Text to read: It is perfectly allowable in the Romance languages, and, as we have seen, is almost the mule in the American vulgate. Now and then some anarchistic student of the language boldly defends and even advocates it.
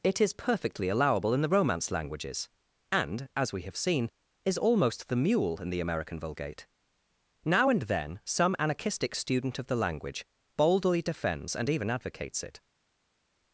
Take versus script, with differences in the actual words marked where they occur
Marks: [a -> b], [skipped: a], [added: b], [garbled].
It is perfectly allowable in the Romance languages, and, as we have seen, is almost the mule in the American vulgate. Now and then some anarchistic student of the language boldly defends and even advocates it.